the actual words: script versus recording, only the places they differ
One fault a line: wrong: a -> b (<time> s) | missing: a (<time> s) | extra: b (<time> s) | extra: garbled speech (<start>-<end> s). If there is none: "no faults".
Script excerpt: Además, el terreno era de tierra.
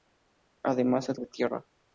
missing: terreno era (1.2 s)